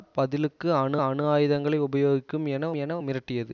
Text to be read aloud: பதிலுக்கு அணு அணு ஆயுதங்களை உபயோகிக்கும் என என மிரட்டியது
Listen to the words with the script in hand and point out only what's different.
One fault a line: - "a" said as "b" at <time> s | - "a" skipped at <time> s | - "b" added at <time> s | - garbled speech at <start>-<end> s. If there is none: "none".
none